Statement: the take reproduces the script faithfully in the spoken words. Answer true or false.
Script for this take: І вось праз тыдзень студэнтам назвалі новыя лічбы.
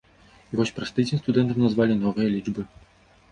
true